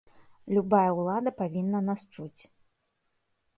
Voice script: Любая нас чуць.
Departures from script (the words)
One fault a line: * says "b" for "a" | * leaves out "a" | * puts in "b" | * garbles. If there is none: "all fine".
* puts in "ўлада павінна"